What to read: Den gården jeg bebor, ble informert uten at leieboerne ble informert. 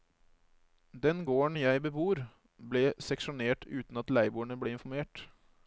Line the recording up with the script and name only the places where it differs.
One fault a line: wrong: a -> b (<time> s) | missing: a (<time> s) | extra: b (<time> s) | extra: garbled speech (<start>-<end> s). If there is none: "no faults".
wrong: informert -> seksjonert (3.0 s)